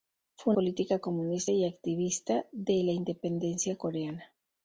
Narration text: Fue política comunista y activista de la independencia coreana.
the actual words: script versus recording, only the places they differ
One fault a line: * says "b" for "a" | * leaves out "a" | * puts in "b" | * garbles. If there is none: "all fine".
all fine